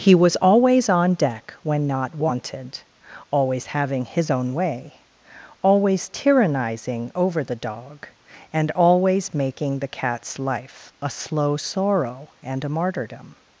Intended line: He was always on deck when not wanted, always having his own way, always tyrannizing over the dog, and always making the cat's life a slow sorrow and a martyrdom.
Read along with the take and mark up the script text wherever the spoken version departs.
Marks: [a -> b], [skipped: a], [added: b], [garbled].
He was always on deck when not wanted, always having his own way, always tyrannizing over the dog, and always making the cat's life a slow sorrow and a martyrdom.